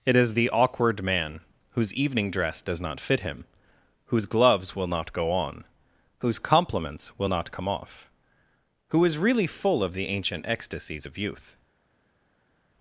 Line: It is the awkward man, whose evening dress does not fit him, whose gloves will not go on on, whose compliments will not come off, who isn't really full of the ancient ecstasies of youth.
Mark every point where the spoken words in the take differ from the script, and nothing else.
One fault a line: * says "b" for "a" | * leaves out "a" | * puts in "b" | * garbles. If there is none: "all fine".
* leaves out "on"
* says "is" for "isn't"